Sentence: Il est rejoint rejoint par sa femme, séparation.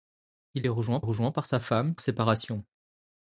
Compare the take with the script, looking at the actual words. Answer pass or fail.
pass